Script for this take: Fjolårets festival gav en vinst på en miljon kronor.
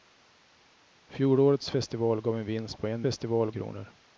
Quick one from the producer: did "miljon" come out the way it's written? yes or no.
no